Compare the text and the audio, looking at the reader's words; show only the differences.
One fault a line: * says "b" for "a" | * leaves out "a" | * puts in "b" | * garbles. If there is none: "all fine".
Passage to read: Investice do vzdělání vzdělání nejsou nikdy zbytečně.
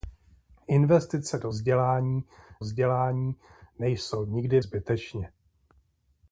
all fine